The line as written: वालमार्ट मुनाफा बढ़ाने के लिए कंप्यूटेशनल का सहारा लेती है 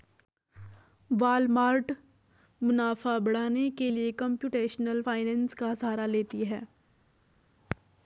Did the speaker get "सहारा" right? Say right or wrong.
right